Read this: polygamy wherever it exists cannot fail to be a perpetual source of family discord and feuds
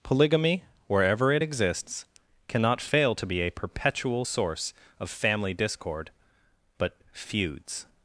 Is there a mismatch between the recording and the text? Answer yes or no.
yes